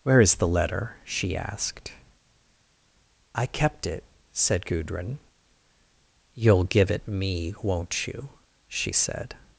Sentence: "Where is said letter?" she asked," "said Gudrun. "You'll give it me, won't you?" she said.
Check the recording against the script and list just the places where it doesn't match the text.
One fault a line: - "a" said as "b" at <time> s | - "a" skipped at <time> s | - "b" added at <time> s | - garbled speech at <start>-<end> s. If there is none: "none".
- "said" said as "the" at 0.3 s
- "I kept it" added at 3.4 s